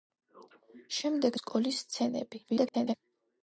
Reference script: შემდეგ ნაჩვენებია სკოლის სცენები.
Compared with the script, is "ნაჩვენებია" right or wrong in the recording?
wrong